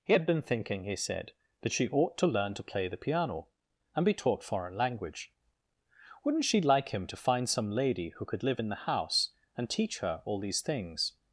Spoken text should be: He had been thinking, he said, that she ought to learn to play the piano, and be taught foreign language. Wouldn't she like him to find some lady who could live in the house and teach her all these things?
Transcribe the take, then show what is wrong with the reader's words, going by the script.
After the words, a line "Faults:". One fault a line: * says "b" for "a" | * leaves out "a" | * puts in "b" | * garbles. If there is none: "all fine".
He had been thinking, he said, that she ought to learn to play the piano, and be taught foreign language. Wouldn't she like him to find some lady who could live in the house and teach her all these things?
Faults:
all fine